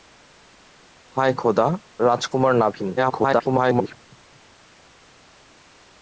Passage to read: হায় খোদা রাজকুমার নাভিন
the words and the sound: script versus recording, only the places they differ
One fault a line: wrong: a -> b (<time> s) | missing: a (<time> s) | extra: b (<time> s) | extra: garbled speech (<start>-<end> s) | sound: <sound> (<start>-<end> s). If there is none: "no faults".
extra: garbled speech (3.0-4.0 s)